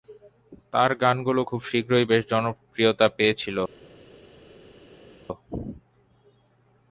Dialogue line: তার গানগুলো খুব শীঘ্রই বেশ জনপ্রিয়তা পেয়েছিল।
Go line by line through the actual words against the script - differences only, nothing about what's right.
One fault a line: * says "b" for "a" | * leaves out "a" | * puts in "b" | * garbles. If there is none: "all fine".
all fine